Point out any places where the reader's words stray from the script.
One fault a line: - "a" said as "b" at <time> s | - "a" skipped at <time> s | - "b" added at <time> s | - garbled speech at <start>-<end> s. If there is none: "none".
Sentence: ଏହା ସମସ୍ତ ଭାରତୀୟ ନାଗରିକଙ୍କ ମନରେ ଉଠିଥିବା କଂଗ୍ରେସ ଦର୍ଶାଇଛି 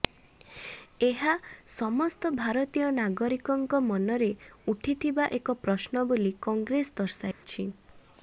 - "ଏକ ପ୍ରଶ୍ନ ବୋଲି" added at 5.4 s